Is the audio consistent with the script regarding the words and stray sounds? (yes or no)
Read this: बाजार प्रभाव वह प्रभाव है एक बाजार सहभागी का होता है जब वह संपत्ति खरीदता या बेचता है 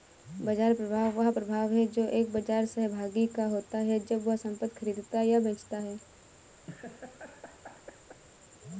no